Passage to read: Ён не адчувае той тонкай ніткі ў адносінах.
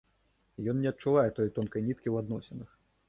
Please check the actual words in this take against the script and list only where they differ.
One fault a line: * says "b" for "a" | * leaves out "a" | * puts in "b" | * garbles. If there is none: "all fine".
all fine